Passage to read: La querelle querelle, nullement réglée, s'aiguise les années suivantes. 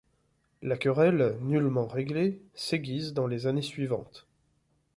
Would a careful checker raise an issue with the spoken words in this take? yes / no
yes